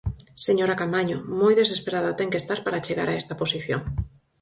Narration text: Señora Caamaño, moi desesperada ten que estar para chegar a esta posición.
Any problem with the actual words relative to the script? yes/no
no